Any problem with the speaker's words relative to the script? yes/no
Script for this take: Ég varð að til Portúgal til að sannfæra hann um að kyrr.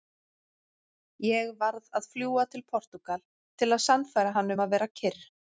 yes